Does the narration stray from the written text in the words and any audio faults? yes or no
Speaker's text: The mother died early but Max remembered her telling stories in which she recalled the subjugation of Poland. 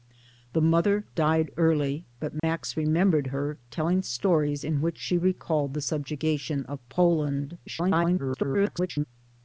yes